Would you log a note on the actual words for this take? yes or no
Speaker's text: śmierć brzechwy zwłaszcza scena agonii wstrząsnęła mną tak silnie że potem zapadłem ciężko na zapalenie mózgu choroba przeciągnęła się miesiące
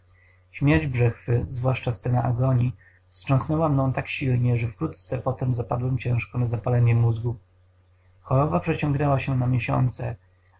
yes